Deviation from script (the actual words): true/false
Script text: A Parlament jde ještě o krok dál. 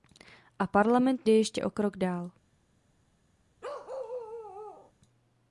false